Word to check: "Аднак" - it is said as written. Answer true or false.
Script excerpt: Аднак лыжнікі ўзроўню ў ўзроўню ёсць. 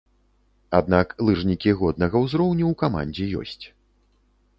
true